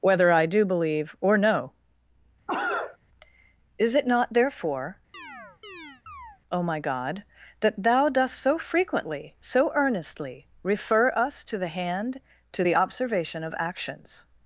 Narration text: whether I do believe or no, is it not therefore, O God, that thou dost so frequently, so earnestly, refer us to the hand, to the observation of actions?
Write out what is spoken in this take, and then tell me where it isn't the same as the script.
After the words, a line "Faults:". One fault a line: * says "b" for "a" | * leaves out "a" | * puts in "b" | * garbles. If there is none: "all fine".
whether I do believe or no, is it not therefore, O my God, that thou dost so frequently, so earnestly, refer us to the hand, to the observation of actions?
Faults:
* puts in "my"